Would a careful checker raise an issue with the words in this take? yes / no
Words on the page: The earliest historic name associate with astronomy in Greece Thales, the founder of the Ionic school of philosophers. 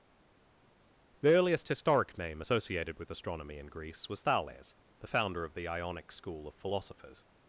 yes